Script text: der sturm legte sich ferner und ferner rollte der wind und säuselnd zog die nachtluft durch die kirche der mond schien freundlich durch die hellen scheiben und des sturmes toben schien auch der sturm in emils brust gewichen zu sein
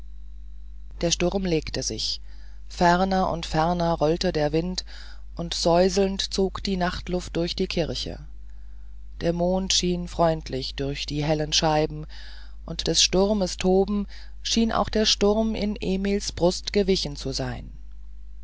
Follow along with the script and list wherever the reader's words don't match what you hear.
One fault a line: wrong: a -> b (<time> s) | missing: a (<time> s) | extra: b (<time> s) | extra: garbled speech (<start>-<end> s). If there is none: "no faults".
no faults